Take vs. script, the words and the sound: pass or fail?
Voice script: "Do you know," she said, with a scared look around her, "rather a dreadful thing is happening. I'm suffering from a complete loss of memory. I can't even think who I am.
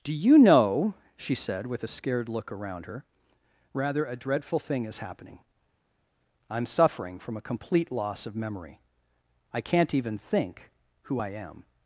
pass